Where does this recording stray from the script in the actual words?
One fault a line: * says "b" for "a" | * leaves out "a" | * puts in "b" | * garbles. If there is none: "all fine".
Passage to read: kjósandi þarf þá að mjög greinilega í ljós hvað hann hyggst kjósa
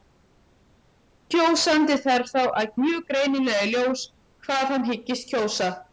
all fine